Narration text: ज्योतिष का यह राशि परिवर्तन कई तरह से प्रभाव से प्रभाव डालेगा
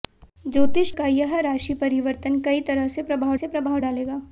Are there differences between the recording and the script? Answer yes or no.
no